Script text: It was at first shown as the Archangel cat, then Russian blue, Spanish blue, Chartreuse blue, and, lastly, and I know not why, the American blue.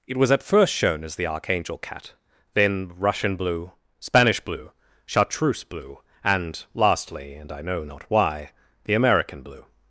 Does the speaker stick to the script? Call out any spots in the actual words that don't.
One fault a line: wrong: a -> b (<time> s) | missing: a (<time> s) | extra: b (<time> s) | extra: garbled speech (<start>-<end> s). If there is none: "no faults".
no faults